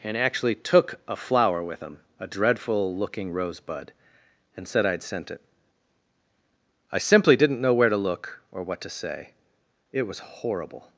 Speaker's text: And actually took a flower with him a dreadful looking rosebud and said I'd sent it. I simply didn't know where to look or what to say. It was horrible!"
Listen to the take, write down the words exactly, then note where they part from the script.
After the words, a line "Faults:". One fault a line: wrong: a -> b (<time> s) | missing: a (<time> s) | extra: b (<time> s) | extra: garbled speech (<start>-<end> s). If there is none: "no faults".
And actually took a flower with him a dreadful looking rosebud and said I'd sent it. I simply didn't know where to look or what to say. It was horrible!"
Faults:
no faults